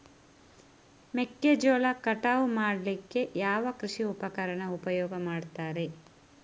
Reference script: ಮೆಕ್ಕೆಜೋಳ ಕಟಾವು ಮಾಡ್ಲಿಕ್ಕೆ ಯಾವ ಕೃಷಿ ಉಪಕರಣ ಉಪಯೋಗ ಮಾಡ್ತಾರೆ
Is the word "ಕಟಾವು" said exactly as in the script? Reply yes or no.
yes